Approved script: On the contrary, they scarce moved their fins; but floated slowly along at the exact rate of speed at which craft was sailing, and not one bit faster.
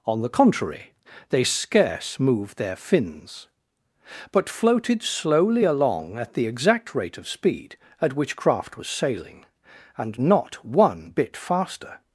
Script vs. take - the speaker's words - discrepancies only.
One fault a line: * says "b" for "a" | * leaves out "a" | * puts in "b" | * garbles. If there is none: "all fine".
all fine